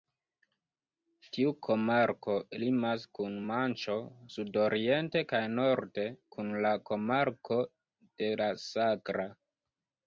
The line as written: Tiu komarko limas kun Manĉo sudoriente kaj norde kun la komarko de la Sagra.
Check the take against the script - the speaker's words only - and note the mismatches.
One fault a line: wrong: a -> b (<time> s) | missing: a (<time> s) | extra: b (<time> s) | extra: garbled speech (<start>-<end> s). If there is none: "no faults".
no faults